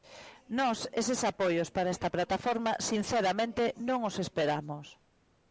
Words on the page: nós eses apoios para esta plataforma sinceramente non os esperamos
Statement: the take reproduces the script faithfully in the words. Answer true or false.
true